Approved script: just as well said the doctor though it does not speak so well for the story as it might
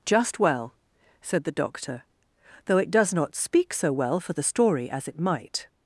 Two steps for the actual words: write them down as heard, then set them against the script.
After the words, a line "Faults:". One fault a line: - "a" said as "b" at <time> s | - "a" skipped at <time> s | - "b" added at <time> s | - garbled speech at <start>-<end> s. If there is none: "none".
just well said the doctor though it does not speak so well for the story as it might
Faults:
- "as" skipped at 0.4 s